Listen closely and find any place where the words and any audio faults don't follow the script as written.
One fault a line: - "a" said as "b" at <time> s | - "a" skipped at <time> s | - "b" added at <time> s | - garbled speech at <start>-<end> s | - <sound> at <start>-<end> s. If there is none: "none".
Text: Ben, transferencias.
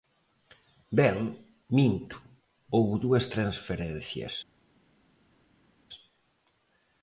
- "minto houbo dúas" added at 1.8 s